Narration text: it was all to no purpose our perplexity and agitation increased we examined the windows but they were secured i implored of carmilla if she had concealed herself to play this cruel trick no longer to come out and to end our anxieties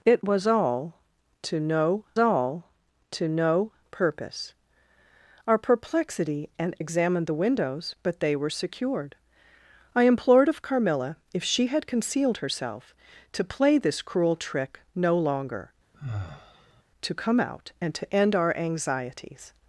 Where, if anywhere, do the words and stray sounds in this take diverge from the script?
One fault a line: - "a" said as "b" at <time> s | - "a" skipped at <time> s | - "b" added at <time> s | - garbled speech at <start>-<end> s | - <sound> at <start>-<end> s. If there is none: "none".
- "all to no" added at 2.2 s
- "agitation increased we" skipped at 6.8 s
- sigh at 15.9-16.8 s